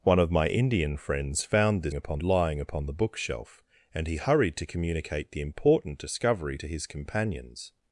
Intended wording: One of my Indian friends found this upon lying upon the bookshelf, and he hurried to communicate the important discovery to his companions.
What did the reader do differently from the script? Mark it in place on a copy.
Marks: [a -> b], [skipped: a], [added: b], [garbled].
One of my Indian friends found this upon lying upon the bookshelf, and he hurried to communicate the important discovery to his companions.